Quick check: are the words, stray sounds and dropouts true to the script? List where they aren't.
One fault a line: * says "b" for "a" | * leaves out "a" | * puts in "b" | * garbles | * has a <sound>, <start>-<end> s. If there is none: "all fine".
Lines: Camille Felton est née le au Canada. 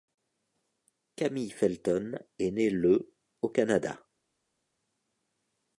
all fine